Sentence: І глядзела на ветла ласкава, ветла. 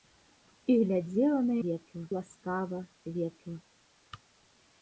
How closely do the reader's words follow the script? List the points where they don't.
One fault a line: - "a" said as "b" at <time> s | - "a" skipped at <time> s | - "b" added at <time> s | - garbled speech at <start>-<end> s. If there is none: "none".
none